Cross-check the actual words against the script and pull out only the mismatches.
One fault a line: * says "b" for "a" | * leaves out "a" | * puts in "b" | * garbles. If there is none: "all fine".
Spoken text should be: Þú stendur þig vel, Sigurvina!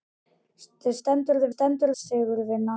* says "stendur" for "vel"